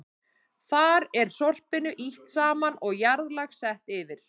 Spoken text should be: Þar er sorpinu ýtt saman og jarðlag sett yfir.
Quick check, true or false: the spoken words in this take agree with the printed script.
true